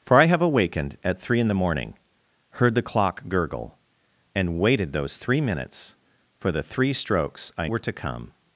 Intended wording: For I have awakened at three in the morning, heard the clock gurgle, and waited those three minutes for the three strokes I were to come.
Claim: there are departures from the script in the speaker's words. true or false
false